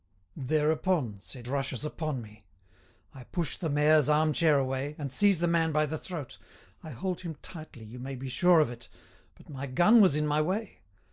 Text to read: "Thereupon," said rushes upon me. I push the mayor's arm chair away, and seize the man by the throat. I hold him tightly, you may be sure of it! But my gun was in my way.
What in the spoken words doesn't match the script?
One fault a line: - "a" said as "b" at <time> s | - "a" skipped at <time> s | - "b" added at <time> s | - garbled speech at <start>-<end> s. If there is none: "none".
none